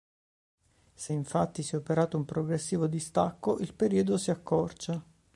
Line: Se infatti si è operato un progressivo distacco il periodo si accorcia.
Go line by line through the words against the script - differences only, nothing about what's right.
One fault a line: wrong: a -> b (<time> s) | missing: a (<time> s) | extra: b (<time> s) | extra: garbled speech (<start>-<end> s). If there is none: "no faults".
no faults